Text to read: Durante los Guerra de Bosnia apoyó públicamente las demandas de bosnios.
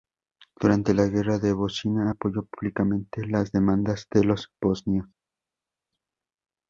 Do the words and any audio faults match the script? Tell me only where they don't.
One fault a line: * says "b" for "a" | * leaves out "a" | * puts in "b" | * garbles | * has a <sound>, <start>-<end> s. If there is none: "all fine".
* says "la" for "los"
* puts in "los"